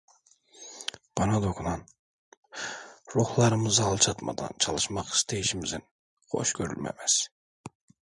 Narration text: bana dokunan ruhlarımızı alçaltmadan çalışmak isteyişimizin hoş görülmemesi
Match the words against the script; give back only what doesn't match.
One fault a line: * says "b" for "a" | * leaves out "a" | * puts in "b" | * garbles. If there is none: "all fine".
all fine